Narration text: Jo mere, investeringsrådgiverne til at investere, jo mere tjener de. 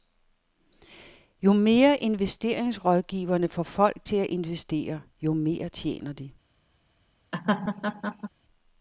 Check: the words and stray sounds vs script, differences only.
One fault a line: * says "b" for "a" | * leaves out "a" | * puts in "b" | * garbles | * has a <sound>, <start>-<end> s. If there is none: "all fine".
* puts in "får folk"
* has a laugh, 7.3-8.3 s